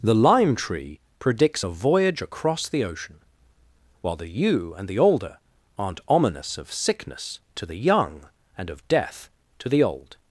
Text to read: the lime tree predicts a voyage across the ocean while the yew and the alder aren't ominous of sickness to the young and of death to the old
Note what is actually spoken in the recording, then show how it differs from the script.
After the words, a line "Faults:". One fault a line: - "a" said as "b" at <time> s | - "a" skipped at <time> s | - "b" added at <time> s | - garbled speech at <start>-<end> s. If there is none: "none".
the lime tree predicts a voyage across the ocean while the yew and the alder aren't ominous of sickness to the young and of death to the old
Faults:
none